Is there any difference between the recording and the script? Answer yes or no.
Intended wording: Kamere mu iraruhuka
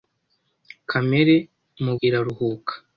no